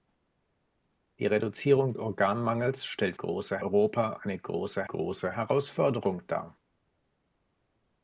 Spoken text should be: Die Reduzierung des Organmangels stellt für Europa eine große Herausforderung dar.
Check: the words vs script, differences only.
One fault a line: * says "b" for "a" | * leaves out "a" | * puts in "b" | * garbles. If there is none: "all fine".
* leaves out "des"
* says "große" for "für"
* puts in "große"